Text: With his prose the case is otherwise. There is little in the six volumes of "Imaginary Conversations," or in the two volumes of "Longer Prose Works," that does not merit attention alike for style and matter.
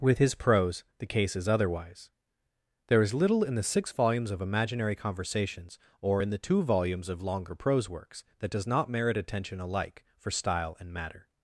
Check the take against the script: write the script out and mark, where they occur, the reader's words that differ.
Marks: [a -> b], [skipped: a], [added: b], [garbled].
With his prose the case is otherwise. There is little in the six volumes of "Imaginary Conversations," or in the two volumes of "Longer Prose Works," that does not merit attention alike for style and matter.